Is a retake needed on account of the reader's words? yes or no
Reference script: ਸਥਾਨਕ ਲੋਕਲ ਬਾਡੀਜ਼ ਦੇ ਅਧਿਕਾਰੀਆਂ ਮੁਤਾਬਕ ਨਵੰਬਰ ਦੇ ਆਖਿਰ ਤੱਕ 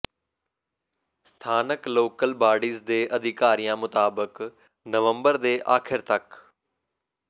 no